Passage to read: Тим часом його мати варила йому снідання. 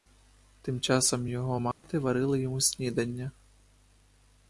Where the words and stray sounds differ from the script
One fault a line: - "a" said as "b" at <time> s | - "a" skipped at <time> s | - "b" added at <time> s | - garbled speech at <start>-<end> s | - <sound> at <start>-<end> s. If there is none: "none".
- dropout at 1.7-1.8 s